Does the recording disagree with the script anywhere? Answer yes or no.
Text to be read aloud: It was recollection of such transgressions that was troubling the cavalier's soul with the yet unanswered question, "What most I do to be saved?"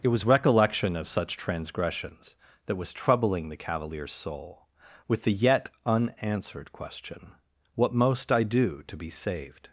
no